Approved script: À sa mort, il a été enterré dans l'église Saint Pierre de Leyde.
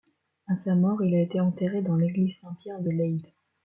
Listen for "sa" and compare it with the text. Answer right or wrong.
right